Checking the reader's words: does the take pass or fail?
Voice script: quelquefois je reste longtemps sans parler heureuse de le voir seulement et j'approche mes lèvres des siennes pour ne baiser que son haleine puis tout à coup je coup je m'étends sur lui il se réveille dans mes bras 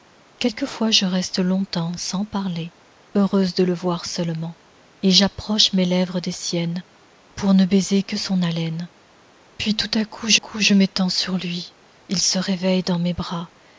pass